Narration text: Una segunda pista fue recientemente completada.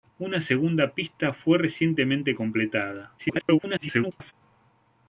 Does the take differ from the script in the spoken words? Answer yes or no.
yes